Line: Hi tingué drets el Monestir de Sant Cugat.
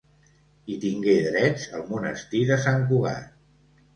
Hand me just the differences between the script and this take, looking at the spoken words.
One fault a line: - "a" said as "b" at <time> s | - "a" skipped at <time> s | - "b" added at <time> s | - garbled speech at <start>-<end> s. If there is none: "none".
none